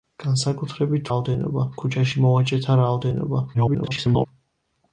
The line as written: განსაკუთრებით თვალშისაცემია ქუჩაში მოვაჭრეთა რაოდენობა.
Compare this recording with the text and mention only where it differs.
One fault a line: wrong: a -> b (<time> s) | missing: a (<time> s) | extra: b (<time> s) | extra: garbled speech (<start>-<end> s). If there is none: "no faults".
wrong: თვალშისაცემია -> რაოდენობა (1.1 s)
extra: garbled speech (3.5-4.3 s)